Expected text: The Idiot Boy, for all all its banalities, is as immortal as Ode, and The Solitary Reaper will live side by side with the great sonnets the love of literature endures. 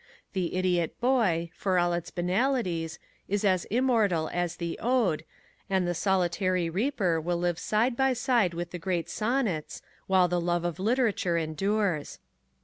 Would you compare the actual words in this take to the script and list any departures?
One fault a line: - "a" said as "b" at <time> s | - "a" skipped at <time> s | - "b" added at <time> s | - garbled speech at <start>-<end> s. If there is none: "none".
- "all" skipped at 1.9 s
- "The" added at 4.5 s
- "while" added at 10.1 s